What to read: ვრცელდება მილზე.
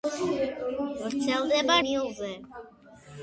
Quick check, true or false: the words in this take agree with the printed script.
true